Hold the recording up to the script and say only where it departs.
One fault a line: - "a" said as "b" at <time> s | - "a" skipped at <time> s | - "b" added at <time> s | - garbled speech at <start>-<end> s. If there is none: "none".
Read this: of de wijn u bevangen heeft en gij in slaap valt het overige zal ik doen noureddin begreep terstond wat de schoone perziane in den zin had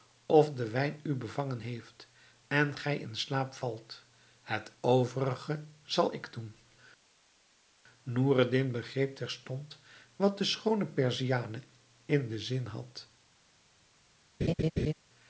none